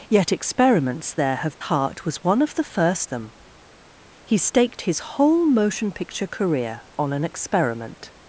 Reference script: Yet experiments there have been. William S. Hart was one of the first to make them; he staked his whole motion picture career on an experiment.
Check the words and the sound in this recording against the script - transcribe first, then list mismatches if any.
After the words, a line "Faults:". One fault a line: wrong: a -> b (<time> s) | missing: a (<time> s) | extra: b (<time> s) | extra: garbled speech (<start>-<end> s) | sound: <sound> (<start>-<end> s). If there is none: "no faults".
Yet experiments there have. Hart was one of the first them; he staked his whole motion picture career on an experiment.
Faults:
missing: been William S (1.6 s)
missing: to make (3.1 s)